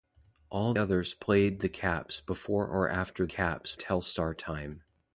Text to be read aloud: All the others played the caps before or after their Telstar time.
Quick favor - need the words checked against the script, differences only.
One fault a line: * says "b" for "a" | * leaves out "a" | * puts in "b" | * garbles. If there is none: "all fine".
* leaves out "the"
* says "caps" for "their"